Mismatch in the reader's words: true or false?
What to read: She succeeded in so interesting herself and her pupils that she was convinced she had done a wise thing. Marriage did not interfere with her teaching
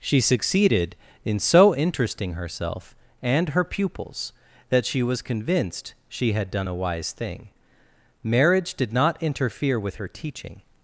false